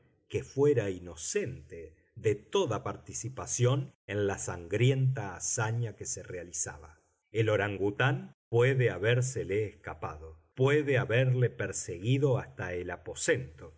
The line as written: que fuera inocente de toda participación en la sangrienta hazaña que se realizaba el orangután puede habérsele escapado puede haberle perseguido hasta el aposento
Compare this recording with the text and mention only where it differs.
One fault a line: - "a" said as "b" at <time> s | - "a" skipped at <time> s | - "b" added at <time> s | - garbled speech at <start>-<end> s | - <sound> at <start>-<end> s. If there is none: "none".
none